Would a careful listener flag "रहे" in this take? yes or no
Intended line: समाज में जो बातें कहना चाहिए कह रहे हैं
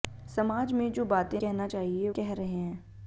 no